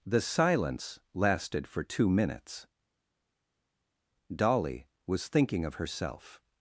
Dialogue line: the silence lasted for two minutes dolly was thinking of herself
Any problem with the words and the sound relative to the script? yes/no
no